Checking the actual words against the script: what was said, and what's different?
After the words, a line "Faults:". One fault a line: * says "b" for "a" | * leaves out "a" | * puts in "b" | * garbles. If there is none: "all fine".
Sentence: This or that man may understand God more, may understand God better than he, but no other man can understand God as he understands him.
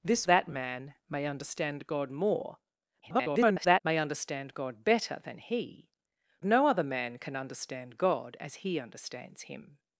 This that man may understand God more, [garbled] may understand God better than he, no other man can understand God as he understands him.
Faults:
* leaves out "or"
* garbles
* leaves out "but"